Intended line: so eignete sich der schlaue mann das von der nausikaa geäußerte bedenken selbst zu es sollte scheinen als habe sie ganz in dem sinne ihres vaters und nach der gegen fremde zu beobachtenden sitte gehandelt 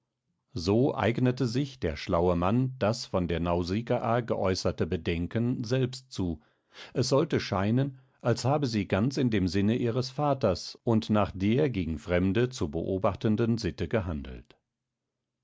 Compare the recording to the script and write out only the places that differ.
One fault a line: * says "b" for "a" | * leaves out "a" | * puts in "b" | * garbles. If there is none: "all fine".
all fine